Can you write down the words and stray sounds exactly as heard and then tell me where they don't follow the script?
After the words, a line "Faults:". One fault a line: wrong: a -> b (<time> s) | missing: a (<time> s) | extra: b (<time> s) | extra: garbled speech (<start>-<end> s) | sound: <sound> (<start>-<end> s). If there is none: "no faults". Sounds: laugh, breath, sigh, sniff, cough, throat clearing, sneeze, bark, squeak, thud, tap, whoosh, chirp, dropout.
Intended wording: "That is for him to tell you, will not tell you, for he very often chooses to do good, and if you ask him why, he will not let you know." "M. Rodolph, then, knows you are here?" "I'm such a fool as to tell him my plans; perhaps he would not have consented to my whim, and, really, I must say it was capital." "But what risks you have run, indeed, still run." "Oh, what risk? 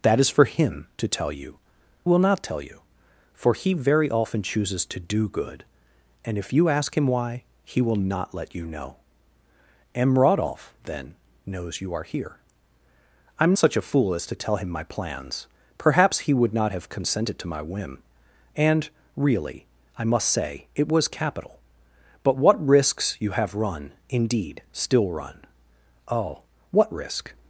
"That is for him to tell you, will not tell you, for he very often chooses to do good, and if you ask him why, he will not let you know." "M. Rodolph, then, knows you are here?" "I'm such a fool as to tell him my plans; perhaps he would not have consented to my whim, and, really, I must say it was capital." "But what risks you have run, indeed, still run." "Oh, what risk?
Faults:
no faults